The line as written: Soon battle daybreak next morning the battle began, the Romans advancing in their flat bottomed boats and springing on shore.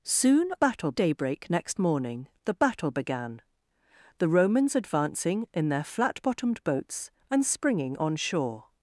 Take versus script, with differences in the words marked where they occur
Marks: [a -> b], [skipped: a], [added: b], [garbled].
Soon battle daybreak next morning the battle began, the Romans advancing in their flat bottomed boats and springing on shore.